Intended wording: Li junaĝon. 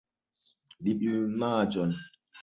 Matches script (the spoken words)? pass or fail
pass